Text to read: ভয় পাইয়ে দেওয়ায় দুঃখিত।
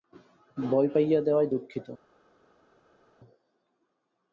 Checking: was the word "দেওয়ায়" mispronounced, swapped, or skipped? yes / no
no